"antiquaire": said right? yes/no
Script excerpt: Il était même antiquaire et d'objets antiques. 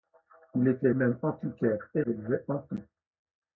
yes